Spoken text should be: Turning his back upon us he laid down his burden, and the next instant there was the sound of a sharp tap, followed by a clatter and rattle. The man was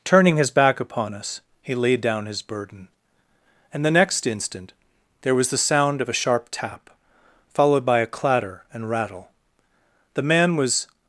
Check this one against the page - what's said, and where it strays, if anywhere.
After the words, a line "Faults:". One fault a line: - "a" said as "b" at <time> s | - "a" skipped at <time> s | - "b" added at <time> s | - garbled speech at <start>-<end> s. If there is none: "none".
Turning his back upon us he laid down his burden, and the next instant there was the sound of a sharp tap, followed by a clatter and rattle. The man was
Faults:
none